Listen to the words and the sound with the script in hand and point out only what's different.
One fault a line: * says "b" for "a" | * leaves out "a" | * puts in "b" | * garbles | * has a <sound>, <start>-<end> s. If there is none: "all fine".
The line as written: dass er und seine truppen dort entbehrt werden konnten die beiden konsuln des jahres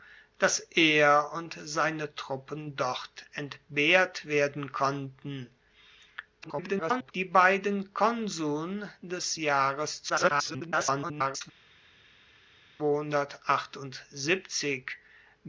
* garbles
* garbles